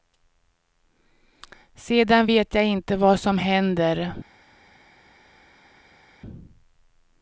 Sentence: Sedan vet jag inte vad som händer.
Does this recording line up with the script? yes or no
yes